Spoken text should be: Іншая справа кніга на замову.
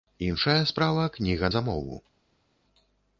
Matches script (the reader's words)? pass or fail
fail